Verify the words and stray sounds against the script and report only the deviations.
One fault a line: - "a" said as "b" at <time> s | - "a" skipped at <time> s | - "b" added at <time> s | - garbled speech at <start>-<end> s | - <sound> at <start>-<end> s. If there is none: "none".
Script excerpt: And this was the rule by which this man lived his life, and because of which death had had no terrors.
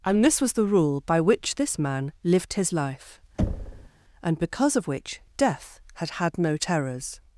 - thud at 3.4-3.9 s